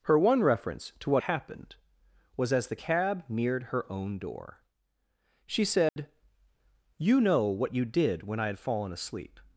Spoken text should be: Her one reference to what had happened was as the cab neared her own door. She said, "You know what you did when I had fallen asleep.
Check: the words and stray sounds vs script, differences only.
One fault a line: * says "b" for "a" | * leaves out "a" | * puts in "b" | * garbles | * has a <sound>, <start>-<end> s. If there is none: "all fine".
* leaves out "had"
* has a dropout, 5.9-6.0 s